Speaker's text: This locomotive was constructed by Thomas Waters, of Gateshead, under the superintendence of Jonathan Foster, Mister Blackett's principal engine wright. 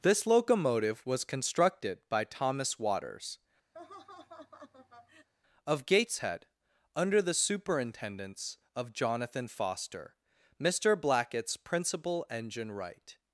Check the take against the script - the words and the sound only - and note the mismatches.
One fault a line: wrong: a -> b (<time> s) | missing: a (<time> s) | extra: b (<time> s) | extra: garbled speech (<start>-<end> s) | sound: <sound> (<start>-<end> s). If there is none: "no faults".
sound: laugh (3.7-5.3 s)